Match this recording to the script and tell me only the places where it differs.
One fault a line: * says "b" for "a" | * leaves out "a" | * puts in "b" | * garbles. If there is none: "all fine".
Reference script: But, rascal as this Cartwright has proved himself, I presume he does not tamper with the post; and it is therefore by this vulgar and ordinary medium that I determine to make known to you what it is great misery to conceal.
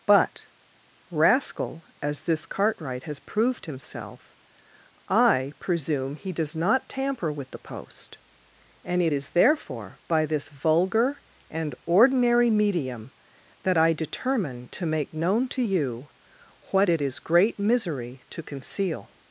all fine